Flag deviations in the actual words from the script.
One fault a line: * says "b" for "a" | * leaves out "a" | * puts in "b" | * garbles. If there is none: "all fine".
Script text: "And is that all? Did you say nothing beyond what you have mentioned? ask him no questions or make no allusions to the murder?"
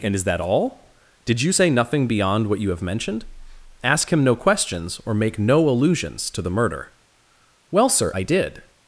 * puts in "Well sir I did"